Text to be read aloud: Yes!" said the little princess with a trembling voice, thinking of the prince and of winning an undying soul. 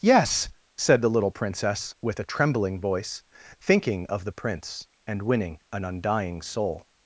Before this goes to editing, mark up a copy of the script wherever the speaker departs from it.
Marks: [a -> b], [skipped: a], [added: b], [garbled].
Yes!" said the little princess with a trembling voice, thinking of the prince and [skipped: of] winning an undying soul.